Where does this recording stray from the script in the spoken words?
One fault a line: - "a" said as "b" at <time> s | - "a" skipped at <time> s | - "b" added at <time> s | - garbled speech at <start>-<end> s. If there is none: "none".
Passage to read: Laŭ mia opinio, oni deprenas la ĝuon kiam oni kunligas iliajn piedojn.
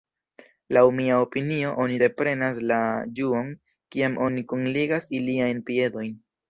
none